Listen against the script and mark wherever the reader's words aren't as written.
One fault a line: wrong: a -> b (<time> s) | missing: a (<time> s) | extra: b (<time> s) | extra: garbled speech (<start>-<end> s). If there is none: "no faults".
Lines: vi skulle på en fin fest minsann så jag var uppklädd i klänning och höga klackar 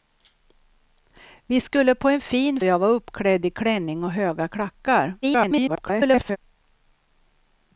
missing: fest minsann så (2.6 s)
extra: garbled speech (5.2-6.4 s)